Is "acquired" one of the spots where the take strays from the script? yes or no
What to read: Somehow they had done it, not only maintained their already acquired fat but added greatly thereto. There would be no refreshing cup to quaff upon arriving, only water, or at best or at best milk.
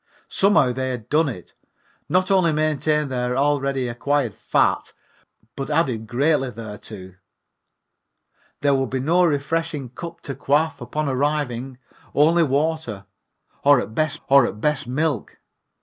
no